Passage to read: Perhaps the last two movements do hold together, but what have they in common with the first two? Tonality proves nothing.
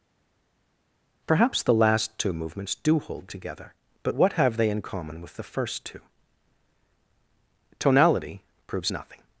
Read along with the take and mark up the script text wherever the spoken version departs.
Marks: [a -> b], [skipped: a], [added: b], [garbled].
Perhaps the last two movements do hold together, but what have they in common with the first two? Tonality proves nothing.